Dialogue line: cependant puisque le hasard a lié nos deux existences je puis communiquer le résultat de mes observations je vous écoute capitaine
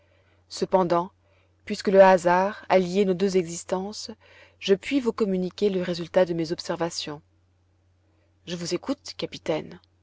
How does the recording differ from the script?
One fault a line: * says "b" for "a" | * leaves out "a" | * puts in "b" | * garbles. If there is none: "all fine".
* puts in "vous"